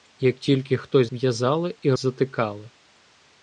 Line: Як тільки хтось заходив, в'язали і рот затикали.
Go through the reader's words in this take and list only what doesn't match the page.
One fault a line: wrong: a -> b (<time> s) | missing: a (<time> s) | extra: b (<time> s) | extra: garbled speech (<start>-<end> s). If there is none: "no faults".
missing: заходив (1.1 s)
missing: рот (1.9 s)